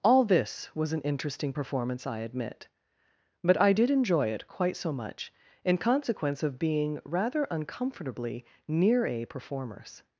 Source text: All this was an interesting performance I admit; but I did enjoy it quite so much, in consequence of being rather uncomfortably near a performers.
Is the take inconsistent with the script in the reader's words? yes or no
no